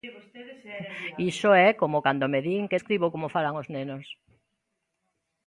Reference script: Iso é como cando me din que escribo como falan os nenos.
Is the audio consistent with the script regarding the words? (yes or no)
yes